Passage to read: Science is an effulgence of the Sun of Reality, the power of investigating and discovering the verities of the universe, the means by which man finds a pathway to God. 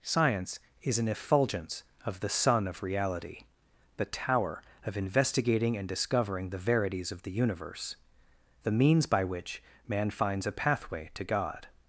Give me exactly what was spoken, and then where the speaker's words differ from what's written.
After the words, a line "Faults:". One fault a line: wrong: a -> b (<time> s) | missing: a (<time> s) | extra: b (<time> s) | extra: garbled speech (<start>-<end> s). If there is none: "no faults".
Science is an effulgence of the Sun of Reality, the tower of investigating and discovering the verities of the universe, the means by which man finds a pathway to God.
Faults:
wrong: power -> tower (4.1 s)